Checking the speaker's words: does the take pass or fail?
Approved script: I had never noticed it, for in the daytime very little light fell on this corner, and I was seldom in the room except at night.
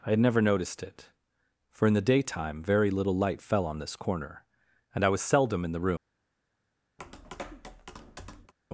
fail